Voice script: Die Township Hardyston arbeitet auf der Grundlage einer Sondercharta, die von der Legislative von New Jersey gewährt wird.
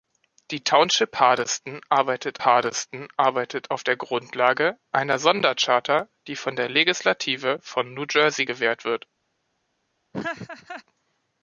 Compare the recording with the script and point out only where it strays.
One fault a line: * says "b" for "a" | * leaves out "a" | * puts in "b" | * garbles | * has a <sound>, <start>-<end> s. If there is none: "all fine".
* puts in "Hardyston arbeitet"
* has a laugh, 10.1-10.8 s